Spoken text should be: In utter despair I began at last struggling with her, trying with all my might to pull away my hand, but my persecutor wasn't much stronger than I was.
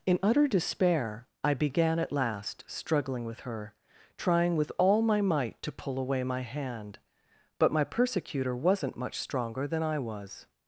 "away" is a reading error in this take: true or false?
false